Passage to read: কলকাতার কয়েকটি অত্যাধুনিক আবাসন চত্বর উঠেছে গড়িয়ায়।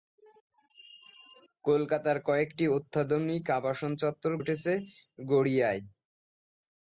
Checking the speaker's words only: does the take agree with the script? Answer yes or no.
yes